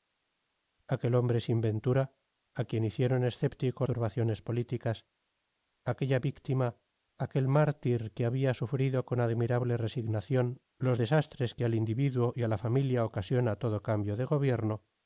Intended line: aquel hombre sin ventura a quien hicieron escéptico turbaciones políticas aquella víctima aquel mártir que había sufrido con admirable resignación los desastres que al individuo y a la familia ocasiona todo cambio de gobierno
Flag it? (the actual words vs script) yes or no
no